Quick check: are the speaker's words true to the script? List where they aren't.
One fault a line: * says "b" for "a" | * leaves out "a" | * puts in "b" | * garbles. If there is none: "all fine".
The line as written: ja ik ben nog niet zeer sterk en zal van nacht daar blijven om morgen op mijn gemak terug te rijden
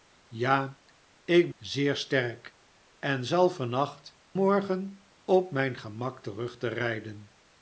* leaves out "ben nog niet"
* leaves out "daar blijven om"